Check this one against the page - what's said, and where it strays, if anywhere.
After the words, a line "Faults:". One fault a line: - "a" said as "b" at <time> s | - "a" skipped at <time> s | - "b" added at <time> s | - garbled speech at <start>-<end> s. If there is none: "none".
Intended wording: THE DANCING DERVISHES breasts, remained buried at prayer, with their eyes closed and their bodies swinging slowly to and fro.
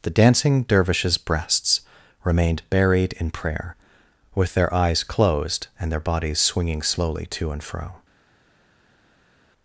THE DANCING DERVISHES breasts, remained buried in prayer, with their eyes closed and their bodies swinging slowly to and fro.
Faults:
- "at" said as "in" at 3.1 s